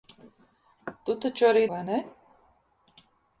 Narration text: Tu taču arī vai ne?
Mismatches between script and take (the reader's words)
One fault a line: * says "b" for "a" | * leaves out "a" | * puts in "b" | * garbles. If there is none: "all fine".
all fine